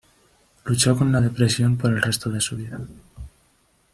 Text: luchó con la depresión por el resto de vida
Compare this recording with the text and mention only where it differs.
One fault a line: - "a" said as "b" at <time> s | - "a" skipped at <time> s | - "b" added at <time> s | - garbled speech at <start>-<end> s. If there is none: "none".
- "su" added at 2.4 s